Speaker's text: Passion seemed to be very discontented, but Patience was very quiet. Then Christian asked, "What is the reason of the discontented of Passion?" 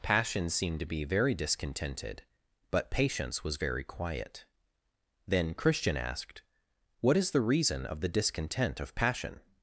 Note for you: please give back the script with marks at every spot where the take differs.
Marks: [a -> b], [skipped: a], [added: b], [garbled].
Passion seemed to be very discontented, but Patience was very quiet. Then Christian asked, "What is the reason of the [discontented -> discontent] of Passion?"